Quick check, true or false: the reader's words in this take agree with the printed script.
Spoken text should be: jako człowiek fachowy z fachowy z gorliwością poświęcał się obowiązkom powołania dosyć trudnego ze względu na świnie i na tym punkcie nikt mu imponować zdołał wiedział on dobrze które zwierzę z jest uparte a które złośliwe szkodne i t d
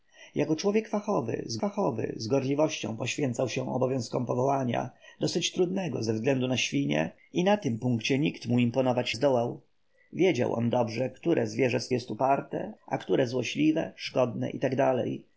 true